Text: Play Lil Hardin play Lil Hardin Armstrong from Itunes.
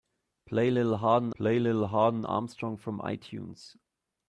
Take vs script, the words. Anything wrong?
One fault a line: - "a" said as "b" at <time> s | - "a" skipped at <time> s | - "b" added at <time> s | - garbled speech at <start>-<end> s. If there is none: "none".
none